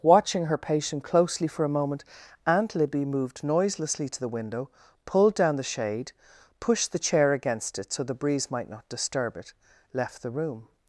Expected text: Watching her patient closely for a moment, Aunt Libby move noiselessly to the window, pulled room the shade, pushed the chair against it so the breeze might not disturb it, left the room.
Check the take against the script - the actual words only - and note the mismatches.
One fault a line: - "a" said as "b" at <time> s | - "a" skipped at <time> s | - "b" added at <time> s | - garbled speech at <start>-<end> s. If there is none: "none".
- "move" said as "moved" at 3.0 s
- "room" said as "down" at 5.3 s